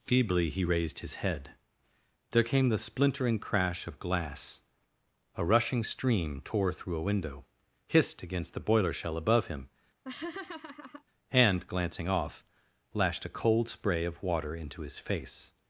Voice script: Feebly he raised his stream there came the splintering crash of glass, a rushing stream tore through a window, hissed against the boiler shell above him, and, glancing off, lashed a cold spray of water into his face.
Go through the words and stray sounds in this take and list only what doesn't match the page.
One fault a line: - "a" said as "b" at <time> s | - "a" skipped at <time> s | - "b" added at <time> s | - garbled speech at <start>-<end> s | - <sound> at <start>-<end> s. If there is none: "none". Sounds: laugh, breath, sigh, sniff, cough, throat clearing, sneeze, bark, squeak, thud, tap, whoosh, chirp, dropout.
- "stream" said as "head" at 1.2 s
- laugh at 10.0-11.0 s